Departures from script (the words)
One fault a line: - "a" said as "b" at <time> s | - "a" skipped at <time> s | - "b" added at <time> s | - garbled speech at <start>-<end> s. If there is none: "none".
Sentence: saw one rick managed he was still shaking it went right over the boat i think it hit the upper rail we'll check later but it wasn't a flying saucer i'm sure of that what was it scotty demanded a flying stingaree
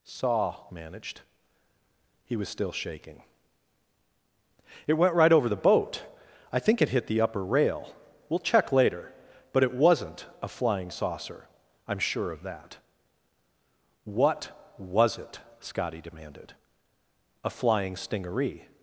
- "one rick" skipped at 0.7 s